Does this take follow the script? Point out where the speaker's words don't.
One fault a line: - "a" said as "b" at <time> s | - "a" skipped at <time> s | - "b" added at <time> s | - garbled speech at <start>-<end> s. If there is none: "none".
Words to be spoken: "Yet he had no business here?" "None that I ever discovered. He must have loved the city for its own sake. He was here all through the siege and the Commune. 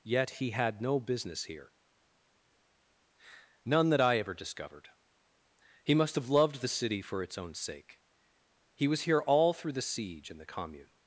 none